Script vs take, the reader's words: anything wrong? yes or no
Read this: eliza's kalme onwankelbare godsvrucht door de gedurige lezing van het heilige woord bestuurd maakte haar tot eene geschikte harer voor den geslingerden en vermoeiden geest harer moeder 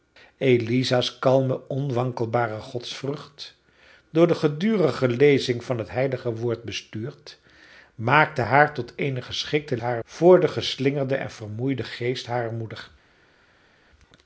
no